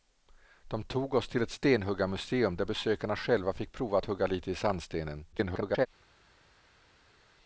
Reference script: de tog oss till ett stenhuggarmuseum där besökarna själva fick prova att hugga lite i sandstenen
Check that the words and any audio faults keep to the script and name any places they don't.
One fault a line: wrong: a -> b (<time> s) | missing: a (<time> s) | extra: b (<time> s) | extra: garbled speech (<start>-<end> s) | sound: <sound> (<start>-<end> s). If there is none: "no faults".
extra: garbled speech (5.3-5.9 s)